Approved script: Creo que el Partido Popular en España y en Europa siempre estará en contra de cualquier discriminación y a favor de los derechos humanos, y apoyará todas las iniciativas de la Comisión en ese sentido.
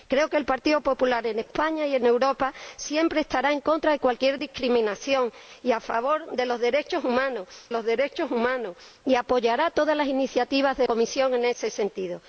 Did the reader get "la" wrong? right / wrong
wrong